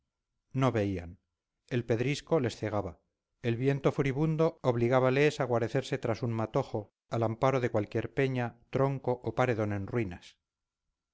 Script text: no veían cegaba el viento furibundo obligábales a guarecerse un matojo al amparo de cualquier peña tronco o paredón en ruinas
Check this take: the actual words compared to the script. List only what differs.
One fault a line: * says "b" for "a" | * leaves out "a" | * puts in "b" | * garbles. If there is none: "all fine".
* puts in "el pedrisco les"
* puts in "tras"